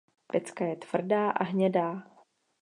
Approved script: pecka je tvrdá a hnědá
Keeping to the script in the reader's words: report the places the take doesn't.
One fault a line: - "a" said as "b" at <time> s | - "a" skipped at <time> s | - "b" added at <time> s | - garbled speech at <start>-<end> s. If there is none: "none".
none